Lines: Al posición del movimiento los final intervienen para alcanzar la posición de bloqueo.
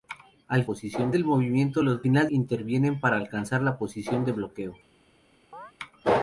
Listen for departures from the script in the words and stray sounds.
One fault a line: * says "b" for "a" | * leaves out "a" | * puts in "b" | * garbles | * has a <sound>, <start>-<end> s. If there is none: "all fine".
* has a chirp, 5.5-5.7 s